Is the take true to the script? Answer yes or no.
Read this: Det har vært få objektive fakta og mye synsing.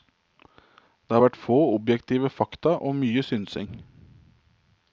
yes